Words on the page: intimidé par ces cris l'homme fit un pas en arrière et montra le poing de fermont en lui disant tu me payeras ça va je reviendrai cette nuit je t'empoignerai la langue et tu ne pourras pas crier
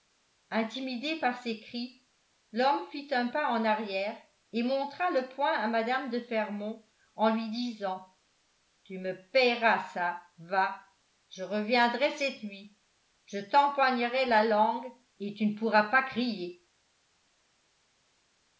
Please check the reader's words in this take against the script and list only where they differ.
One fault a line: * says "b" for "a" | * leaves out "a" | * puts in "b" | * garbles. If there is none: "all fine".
* puts in "à mme"